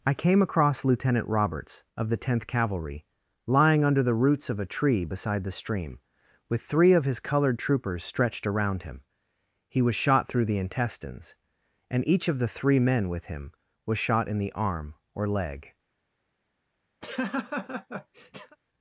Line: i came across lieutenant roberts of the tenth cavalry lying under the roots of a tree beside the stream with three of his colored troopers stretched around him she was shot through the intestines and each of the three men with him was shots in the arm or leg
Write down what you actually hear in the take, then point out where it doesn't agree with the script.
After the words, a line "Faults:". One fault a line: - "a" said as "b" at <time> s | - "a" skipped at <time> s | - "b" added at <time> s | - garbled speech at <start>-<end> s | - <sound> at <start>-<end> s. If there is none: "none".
i came across lieutenant roberts of the tenth cavalry lying under the roots of a tree beside the stream with three of his colored troopers stretched around him he was shot through the intestines and each of the three men with him was shot in the arm or leg
Faults:
- "she" said as "he" at 9.7 s
- "shots" said as "shot" at 14.0 s
- laugh at 17.0-18.6 s